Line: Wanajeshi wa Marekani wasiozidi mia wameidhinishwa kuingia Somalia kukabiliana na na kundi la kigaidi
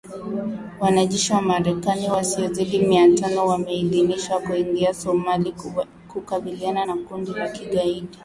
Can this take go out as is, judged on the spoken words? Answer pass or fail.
fail